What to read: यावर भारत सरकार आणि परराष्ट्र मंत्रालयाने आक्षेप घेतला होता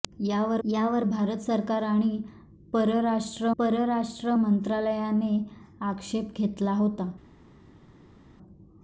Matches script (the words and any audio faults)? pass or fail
fail